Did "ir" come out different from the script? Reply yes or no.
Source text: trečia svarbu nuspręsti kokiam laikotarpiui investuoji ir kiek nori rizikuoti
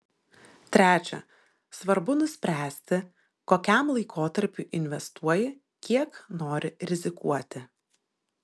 yes